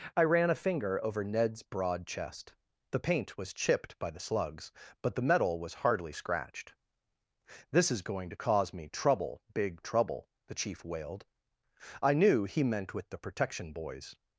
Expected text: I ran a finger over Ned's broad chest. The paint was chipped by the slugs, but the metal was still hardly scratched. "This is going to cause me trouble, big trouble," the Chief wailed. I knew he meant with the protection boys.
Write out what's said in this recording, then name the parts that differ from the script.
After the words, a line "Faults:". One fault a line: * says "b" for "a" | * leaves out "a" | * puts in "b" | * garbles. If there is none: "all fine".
I ran a finger over Ned's broad chest. The paint was chipped by the slugs, but the metal was hardly scratched. "This is going to cause me trouble, big trouble," the Chief wailed. I knew he meant with the protection boys.
Faults:
* leaves out "still"